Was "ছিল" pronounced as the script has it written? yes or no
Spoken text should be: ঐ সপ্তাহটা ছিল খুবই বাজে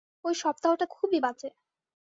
no